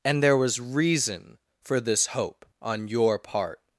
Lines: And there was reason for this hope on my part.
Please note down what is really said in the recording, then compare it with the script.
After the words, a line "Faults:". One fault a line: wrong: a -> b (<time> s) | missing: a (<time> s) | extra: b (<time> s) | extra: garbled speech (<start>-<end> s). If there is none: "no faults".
And there was reason for this hope on your part.
Faults:
wrong: my -> your (2.9 s)